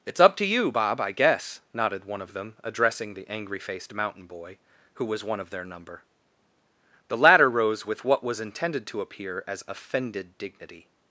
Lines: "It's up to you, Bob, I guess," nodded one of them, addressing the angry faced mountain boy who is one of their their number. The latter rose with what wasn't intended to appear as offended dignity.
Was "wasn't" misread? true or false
true